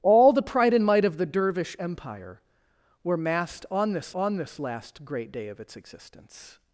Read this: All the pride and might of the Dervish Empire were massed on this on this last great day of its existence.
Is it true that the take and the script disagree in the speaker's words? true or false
false